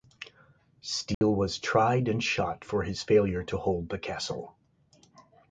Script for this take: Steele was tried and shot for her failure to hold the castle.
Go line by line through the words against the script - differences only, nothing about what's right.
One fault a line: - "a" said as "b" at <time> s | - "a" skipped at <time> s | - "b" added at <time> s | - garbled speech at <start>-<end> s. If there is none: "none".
- "her" said as "his" at 2.8 s